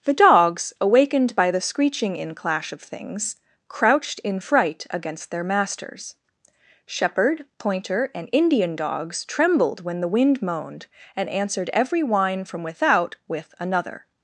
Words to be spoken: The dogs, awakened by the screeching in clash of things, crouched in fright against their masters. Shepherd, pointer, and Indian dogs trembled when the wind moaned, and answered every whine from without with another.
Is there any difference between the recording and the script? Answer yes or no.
no